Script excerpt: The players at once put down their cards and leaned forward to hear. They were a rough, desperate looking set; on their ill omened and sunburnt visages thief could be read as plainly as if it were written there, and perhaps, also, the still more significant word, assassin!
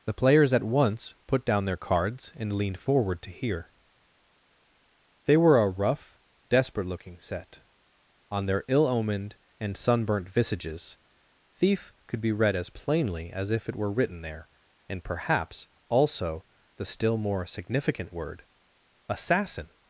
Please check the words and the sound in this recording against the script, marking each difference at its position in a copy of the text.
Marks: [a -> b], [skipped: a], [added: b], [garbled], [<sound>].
The players at once put down their cards and leaned forward to hear. They were a rough, desperate looking set; on their ill omened and sunburnt visages thief could be read as plainly as if it were written there, and perhaps, also, the still more significant word, assassin!